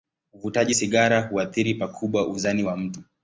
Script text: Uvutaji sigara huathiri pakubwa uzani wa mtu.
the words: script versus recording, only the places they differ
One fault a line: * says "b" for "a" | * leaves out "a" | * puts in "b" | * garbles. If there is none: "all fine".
all fine